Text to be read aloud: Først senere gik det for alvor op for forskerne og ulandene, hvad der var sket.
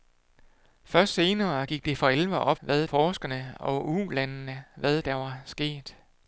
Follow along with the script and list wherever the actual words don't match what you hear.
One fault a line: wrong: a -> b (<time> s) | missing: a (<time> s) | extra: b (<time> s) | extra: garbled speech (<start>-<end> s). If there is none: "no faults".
wrong: for -> hvad (2.6 s)